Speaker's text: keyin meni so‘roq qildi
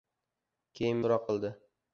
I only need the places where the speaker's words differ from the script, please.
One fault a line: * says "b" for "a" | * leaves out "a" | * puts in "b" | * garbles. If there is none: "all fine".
* leaves out "meni"